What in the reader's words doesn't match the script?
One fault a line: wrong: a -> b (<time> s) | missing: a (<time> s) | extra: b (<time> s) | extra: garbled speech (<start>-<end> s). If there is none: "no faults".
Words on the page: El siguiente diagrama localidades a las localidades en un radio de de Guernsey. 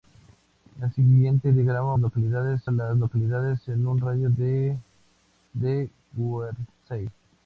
no faults